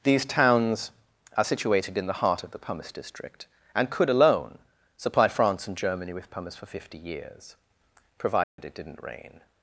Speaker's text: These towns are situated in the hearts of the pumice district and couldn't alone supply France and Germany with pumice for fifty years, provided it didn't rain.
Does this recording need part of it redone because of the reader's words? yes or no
yes